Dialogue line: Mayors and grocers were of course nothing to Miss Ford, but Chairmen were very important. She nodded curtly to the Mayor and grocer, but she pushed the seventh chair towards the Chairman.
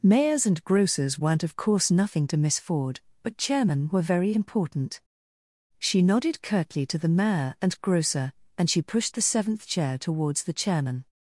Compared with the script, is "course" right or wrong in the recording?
right